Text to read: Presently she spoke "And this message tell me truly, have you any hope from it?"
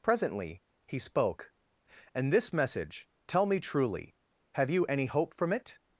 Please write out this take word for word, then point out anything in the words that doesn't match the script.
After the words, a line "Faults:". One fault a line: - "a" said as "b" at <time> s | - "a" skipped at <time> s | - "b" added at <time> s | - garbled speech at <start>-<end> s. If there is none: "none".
Presently he spoke "And this message tell me truly, have you any hope from it?"
Faults:
- "she" said as "he" at 0.9 s